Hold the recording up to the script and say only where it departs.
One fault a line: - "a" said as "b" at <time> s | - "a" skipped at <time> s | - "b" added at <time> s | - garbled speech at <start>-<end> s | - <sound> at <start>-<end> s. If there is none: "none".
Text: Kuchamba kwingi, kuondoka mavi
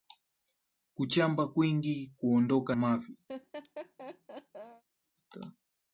- laugh at 3.3-4.8 s